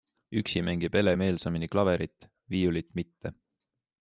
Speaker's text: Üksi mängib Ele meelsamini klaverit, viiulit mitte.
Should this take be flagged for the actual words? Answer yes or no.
no